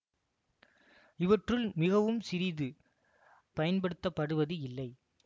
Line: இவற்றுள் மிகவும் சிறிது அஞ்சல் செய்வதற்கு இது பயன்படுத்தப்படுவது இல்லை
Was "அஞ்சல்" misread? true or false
true